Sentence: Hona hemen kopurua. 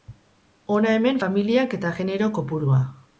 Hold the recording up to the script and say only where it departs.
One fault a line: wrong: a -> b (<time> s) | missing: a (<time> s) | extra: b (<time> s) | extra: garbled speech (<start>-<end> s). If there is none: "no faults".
extra: familiak eta genero (1.2 s)